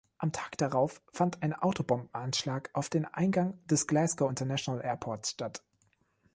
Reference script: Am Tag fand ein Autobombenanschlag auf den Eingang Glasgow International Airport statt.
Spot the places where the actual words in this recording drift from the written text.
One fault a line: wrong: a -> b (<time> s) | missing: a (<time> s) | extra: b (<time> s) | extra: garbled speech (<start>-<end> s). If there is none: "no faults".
extra: darauf (0.6 s)
extra: des (3.7 s)